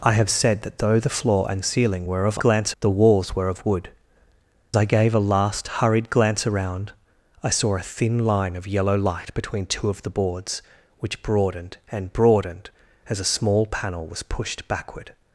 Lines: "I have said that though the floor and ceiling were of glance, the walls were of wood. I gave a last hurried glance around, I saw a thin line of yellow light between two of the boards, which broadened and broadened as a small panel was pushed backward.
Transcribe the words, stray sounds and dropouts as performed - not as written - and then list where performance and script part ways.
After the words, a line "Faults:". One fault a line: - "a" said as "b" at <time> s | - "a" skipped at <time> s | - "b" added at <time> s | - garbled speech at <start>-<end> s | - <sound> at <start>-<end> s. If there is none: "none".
"I have said that though the floor and ceiling were of glance, the walls were of wood. I gave a last hurried glance around, I saw a thin line of yellow light between two of the boards, which broadened and broadened as a small panel was pushed backward.
Faults:
none